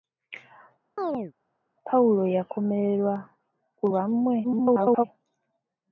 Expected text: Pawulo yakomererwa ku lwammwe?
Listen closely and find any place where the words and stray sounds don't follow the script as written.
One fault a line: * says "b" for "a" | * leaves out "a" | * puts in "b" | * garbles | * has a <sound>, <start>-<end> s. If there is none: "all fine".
* has a chirp, 1.0-1.3 s
* garbles